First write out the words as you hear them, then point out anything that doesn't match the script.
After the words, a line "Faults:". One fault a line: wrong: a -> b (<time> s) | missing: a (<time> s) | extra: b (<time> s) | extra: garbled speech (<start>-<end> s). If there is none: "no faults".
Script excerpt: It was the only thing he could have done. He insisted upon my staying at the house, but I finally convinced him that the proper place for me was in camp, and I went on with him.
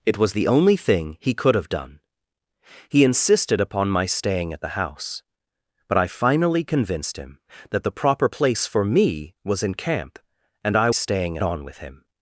It was the only thing he could have done. He insisted upon my staying at the house, but I finally convinced him that the proper place for me was in camp, and I staying on with him.
Faults:
wrong: went -> staying (10.9 s)